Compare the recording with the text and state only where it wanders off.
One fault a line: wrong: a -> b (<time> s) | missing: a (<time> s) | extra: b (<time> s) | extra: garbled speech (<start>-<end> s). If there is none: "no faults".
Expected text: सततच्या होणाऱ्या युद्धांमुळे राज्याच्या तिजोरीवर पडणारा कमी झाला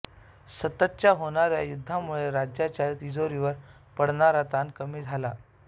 extra: ताण (4.5 s)